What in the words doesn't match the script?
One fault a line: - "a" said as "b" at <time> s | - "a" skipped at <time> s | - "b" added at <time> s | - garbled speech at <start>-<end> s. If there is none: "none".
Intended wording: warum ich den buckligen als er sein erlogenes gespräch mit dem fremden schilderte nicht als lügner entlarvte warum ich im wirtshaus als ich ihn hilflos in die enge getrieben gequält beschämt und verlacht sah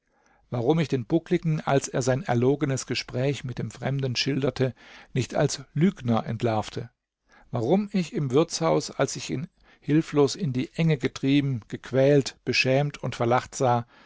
none